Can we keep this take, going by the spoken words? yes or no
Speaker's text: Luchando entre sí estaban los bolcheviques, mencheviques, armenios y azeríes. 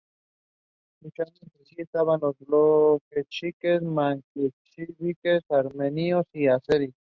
yes